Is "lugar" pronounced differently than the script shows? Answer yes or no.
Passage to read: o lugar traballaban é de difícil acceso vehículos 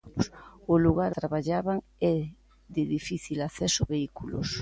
no